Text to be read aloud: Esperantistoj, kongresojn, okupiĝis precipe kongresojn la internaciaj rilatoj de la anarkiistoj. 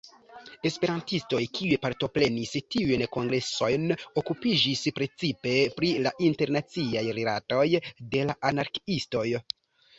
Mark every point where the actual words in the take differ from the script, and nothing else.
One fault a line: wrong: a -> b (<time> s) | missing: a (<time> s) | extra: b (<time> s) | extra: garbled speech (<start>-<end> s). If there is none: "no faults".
extra: kiuj partoprenis tiujn (1.6 s)
wrong: kongresojn -> pri (5.8 s)